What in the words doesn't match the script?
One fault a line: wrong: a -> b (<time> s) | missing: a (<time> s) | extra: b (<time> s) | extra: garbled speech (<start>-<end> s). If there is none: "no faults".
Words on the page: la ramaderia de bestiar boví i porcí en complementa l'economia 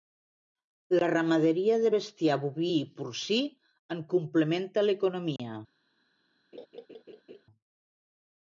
no faults